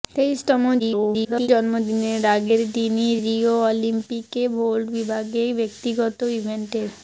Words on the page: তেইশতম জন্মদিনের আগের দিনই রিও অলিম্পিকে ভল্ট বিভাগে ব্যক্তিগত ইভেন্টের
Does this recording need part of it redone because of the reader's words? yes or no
yes